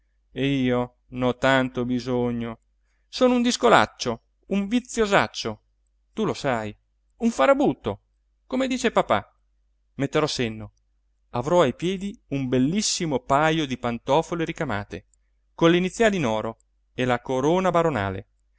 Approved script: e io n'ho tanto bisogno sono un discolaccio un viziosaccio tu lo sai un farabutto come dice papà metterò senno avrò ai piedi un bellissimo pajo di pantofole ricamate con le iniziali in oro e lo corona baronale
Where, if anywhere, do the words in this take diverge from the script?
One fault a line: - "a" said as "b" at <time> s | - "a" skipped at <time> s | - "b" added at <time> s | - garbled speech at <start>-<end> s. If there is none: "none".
- "lo" said as "la" at 17.1 s